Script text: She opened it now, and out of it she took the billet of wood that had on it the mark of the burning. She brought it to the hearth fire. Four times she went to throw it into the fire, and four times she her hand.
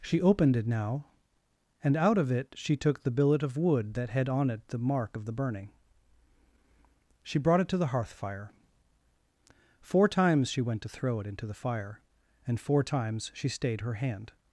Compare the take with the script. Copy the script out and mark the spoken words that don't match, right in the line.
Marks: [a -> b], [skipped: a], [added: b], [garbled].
She opened it now, and out of it she took the billet of wood that had on it the mark of the burning. She brought it to the hearth fire. Four times she went to throw it into the fire, and four times she [added: stayed] her hand.